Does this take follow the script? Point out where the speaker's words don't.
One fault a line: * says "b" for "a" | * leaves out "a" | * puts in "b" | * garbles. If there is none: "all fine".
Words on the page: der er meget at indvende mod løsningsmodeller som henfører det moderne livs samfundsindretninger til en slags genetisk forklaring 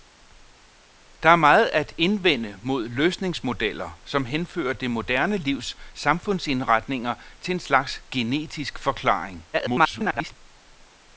* garbles